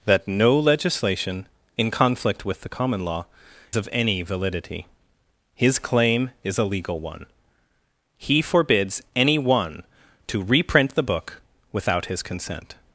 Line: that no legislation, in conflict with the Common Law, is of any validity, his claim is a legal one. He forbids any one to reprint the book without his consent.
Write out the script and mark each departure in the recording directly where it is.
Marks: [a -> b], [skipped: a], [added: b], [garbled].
that no legislation, in conflict with the Common Law, [skipped: is] of any validity, his claim is a legal one. He forbids any one to reprint the book without his consent.